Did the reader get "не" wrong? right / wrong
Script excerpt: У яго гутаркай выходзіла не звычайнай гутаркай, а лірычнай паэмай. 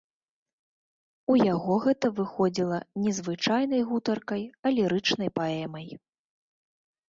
right